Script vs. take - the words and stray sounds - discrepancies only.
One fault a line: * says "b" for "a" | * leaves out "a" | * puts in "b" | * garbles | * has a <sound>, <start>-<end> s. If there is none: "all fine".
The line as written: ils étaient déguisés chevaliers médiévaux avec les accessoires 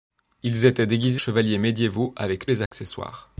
* has a dropout, 2.7-2.7 s